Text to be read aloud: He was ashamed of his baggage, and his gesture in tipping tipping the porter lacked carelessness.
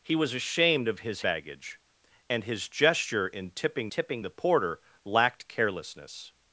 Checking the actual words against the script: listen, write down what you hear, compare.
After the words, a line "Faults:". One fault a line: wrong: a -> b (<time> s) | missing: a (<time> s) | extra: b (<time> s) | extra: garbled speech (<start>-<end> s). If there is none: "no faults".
He was ashamed of his baggage, and his gesture in tipping tipping the porter lacked carelessness.
Faults:
no faults